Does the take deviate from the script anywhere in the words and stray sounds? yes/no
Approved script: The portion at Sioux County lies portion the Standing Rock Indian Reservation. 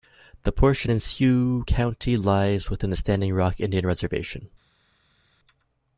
yes